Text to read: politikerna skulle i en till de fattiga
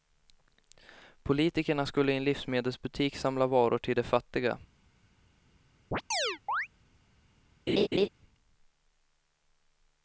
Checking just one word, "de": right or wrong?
right